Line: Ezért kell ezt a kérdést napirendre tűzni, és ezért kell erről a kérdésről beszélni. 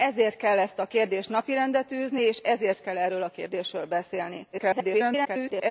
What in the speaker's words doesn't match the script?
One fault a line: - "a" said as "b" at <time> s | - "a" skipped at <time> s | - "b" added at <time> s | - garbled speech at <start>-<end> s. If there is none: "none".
- garbled speech at 4.5-5.7 s